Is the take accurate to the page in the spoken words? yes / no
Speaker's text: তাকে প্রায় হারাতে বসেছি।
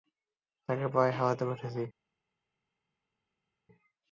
yes